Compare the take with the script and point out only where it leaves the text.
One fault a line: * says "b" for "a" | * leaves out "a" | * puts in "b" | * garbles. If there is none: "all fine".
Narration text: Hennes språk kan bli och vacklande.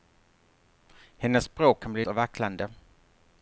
all fine